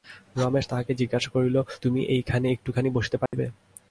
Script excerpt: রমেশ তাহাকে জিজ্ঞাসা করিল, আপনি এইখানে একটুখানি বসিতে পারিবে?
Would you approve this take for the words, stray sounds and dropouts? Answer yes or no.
no